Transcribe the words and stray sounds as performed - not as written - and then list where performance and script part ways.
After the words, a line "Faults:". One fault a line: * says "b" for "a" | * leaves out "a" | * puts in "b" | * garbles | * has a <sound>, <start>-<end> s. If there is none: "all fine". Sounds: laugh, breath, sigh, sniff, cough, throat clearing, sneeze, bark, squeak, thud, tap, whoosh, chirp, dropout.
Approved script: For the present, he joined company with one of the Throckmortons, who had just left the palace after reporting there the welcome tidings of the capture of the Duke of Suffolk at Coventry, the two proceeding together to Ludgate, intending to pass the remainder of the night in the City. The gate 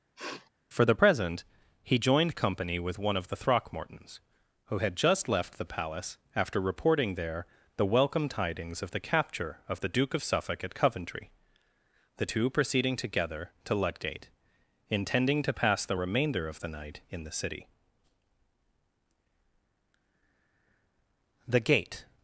For the present, he joined company with one of the Throckmortons, who had just left the palace after reporting there the welcome tidings of the capture of the Duke of Suffolk at Coventry, the two proceeding together to Ludgate, intending to pass the remainder of the night in the City. The gate
Faults:
* has a sniff, 0.2-0.5 s